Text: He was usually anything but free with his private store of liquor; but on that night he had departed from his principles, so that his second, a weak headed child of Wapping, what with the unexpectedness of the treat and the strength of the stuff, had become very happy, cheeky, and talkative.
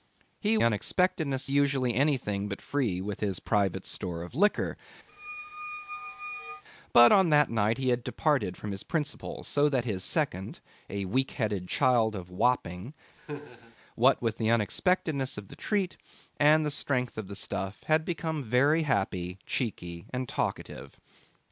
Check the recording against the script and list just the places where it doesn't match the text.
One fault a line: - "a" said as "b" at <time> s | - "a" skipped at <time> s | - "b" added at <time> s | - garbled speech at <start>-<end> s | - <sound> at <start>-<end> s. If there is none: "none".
- "was" said as "unexpectedness" at 0.6 s
- squeak at 5.1-6.6 s
- laugh at 13.2-13.8 s